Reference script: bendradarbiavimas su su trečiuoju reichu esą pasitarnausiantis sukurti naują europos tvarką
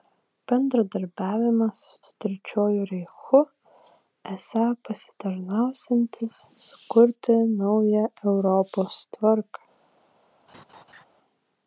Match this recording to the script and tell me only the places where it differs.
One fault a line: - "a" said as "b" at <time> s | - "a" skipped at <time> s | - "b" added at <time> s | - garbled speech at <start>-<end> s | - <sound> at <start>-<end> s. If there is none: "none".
- laugh at 10.5-11.0 s